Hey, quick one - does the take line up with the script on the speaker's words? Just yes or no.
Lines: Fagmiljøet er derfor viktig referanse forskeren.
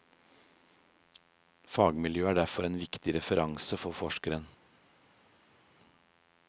no